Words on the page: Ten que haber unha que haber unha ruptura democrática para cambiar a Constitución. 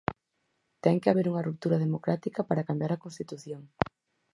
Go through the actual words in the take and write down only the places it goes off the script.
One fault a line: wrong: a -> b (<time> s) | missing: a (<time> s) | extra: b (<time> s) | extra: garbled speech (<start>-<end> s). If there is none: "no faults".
missing: que haber unha (1.5 s)